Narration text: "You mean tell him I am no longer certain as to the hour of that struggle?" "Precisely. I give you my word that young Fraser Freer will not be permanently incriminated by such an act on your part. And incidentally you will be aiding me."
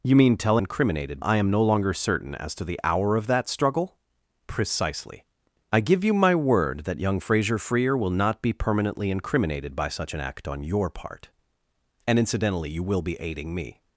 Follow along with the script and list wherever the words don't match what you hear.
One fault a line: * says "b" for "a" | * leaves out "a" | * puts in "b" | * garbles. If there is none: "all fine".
* says "incriminated" for "him"